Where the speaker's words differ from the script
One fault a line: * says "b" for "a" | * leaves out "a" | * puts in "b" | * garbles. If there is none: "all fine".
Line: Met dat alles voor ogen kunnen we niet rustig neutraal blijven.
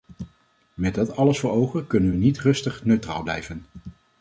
all fine